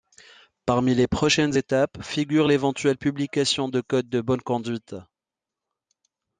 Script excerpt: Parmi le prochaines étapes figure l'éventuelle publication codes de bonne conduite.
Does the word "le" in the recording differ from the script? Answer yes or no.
yes